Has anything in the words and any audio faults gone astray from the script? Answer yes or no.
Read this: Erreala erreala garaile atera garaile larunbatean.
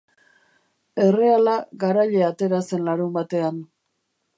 yes